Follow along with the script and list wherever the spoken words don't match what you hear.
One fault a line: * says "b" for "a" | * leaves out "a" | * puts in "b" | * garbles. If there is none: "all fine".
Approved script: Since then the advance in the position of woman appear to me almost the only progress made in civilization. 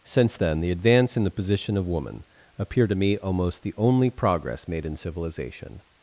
all fine